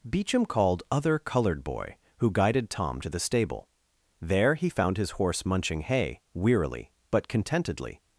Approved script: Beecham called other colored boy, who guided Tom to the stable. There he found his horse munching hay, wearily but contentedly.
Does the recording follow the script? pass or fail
pass